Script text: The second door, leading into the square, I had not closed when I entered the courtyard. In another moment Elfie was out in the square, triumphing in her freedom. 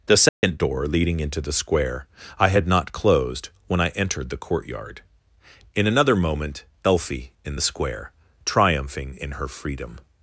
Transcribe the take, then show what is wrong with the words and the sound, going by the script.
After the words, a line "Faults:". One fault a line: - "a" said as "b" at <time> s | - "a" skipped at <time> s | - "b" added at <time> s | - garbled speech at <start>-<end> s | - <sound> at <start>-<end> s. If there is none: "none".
The second door, leading into the square, I had not closed when I entered the courtyard. In another moment Elfie in the square, triumphing in her freedom.
Faults:
- dropout at 0.3-0.4 s
- "was out" skipped at 7.3 s